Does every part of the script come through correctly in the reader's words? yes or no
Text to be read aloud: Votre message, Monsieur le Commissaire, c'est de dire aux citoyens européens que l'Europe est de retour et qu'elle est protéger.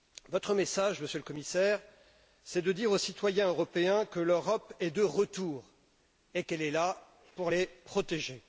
no